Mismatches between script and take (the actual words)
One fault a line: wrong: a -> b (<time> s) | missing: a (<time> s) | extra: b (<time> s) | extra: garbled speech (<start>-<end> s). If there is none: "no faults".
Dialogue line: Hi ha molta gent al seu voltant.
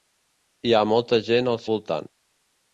missing: seu (1.6 s)